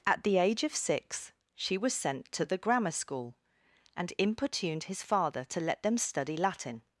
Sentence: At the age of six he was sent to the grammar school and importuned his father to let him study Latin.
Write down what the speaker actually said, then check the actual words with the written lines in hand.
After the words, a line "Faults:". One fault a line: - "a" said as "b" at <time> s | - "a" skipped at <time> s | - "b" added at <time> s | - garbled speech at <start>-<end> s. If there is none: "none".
At the age of six she was sent to the grammar school and importuned his father to let them study Latin.
Faults:
- "he" said as "she" at 1.6 s
- "him" said as "them" at 5.8 s